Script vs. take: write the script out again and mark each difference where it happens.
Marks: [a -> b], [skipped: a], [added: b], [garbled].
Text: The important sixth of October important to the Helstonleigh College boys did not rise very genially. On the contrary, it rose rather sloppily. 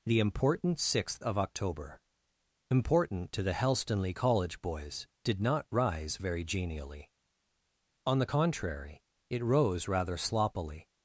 The important sixth of October important to the Helstonleigh College boys did not rise very genially. On the contrary, it rose rather sloppily.